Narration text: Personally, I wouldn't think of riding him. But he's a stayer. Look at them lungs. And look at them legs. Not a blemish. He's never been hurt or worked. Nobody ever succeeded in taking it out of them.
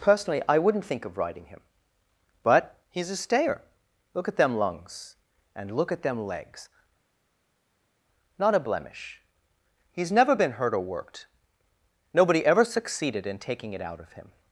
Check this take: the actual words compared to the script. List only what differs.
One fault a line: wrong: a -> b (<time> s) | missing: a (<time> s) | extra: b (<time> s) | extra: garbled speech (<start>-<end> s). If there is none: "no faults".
wrong: them -> him (14.1 s)